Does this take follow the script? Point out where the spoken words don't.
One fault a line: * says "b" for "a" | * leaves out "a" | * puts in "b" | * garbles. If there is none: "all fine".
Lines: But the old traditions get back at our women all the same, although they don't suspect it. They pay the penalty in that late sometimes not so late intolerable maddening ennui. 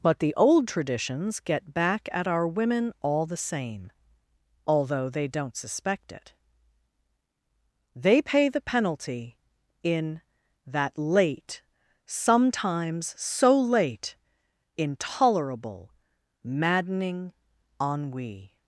* leaves out "not"